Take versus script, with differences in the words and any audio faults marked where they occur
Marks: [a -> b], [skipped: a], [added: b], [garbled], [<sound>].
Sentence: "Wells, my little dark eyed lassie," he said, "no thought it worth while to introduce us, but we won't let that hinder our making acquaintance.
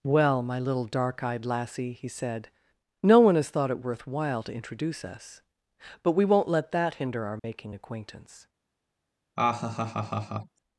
["Wells, -> Well] my little dark eyed lassie," he said, "no [added: one has] thought it worth while to introduce us, but we won't let that hinder our making [dropout] acquaintance. [laugh]